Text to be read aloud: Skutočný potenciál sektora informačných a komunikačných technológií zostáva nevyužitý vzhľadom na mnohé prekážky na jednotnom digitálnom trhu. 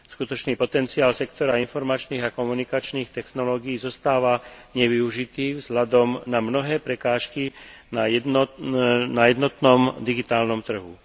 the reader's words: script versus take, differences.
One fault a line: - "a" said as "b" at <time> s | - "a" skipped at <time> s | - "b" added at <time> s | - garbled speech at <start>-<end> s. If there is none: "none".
none